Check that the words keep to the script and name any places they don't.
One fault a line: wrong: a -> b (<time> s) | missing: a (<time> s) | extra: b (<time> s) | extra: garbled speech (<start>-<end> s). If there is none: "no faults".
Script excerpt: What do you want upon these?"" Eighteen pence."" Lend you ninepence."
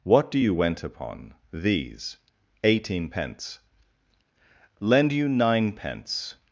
wrong: want -> went (0.5 s)